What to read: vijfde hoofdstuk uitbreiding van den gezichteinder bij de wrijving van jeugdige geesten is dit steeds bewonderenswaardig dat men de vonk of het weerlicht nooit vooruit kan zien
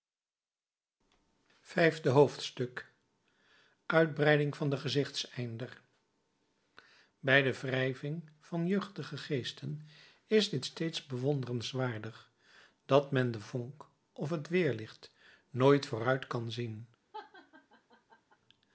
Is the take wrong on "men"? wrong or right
right